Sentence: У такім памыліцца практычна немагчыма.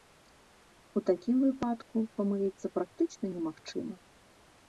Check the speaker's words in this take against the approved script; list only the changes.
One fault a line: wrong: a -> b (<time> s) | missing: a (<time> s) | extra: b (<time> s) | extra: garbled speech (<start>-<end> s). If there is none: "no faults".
extra: выпадку (1.4 s)